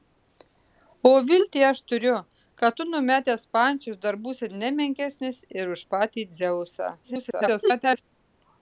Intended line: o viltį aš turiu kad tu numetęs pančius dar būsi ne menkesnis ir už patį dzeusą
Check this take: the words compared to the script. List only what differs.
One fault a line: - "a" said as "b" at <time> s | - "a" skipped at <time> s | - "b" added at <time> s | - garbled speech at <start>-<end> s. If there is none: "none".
- garbled speech at 7.0-8.0 s